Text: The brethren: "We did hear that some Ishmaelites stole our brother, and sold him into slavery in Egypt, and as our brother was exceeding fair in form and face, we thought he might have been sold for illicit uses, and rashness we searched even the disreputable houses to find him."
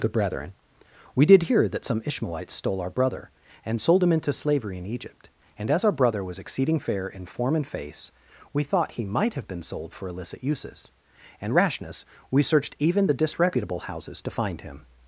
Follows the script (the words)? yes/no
yes